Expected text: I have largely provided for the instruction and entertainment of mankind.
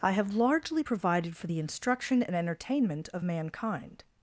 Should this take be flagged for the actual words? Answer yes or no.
no